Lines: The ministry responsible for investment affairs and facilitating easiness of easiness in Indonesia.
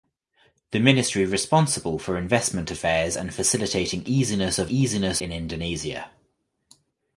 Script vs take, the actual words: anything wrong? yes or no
no